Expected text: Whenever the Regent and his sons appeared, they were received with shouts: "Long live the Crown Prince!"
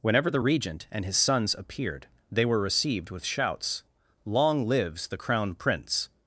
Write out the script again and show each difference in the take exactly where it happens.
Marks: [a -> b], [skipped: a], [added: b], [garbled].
Whenever the Regent and his sons appeared, they were received with shouts: "Long [live -> lives] the Crown Prince!"